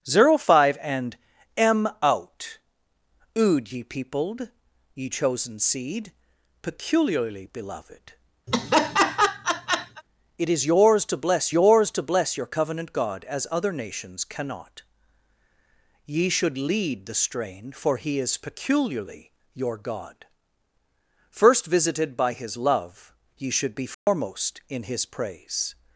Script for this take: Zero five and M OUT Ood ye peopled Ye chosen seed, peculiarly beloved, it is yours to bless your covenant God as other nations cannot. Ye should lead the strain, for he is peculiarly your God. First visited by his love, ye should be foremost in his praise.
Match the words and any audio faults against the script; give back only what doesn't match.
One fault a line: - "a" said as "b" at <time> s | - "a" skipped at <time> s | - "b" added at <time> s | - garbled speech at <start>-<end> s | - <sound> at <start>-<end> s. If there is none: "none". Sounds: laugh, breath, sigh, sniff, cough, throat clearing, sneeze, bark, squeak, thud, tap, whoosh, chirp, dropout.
- laugh at 8.5-10.0 s
- "yours to bless" added at 11.5 s
- dropout at 23.9-24.1 s